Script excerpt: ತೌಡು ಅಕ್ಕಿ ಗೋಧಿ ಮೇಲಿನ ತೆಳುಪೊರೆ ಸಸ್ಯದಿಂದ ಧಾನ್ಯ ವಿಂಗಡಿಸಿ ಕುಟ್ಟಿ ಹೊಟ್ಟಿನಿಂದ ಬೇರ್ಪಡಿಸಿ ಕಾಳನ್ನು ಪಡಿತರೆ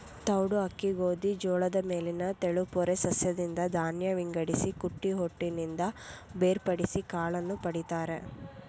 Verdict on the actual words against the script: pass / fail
fail